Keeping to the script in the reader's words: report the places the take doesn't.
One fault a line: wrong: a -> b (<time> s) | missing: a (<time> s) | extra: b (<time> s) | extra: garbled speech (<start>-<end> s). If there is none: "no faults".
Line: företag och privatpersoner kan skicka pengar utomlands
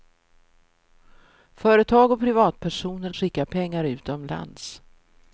missing: kan (3.1 s)